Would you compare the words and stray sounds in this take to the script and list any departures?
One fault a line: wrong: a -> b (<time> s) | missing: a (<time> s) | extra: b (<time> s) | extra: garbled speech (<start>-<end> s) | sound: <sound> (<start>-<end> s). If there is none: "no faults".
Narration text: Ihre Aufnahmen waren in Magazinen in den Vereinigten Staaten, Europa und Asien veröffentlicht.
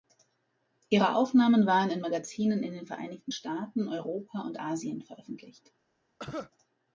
sound: cough (6.2-6.5 s)